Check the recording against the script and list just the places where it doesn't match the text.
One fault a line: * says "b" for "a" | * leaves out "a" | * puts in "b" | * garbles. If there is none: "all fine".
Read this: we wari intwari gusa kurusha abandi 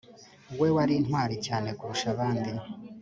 * says "cyane" for "gusa"